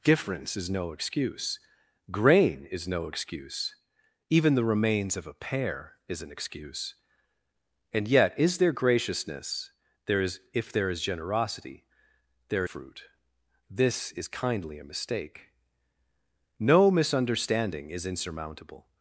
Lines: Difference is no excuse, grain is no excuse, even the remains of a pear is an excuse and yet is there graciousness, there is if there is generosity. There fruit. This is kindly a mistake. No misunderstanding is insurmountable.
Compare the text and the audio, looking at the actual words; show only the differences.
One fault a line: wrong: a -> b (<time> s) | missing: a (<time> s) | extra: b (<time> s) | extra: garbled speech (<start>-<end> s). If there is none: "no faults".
no faults